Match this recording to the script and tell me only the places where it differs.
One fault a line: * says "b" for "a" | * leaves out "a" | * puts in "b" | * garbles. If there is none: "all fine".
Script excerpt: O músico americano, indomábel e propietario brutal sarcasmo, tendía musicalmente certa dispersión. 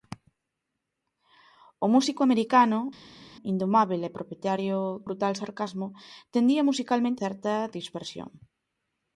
all fine